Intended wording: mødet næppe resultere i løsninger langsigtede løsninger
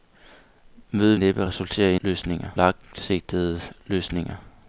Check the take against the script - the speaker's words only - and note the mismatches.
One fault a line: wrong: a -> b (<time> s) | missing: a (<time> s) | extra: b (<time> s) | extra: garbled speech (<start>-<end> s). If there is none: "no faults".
no faults